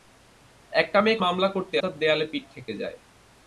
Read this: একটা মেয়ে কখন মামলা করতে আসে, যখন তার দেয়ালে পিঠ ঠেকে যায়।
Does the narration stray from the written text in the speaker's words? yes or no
yes